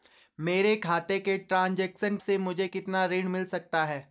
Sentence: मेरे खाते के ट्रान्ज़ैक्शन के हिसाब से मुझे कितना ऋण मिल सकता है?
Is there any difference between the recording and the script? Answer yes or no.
yes